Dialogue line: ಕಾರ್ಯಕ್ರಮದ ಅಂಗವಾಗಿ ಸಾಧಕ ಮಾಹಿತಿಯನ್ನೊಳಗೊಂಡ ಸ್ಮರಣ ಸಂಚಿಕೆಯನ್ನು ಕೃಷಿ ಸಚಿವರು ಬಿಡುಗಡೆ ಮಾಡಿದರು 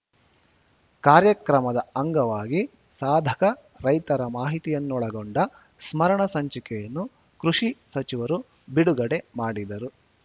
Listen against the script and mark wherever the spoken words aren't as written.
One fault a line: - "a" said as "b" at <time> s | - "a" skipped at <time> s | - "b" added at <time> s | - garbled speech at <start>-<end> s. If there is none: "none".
- "ರೈತರ" added at 3.9 s